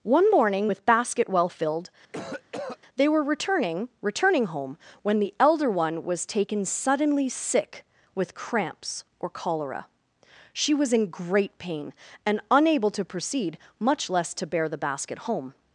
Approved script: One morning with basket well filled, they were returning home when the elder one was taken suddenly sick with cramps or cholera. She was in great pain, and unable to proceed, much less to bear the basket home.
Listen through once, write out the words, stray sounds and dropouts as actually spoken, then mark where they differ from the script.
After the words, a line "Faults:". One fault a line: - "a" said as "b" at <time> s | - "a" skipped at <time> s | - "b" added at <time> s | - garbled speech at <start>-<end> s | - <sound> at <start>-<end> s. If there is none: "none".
One morning with basket well filled, they were returning returning home when the elder one was taken suddenly sick with cramps or cholera. She was in great pain, and unable to proceed, much less to bear the basket home.
Faults:
- cough at 2.1-2.8 s
- "returning" added at 4.0 s